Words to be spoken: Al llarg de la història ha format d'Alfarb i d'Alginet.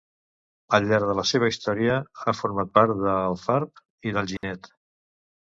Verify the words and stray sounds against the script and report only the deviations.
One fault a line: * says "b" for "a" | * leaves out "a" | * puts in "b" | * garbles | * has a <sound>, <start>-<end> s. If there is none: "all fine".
* puts in "seva"
* puts in "part"
* has a dropout, 4.4-4.4 s